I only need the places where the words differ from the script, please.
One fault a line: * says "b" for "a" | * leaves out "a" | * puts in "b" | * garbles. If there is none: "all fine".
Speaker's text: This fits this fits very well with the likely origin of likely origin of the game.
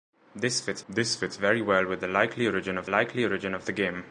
all fine